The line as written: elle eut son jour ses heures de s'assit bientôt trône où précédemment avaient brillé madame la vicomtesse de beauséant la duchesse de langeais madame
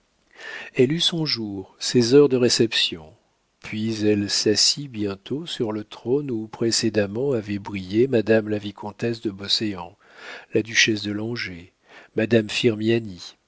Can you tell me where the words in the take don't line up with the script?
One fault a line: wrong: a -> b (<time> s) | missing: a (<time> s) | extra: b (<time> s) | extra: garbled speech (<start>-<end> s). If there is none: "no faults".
extra: réception puis elle (2.4 s)
extra: sur le (5.5 s)